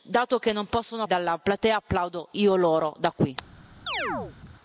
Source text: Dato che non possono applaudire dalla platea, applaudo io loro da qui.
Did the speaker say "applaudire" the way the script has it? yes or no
no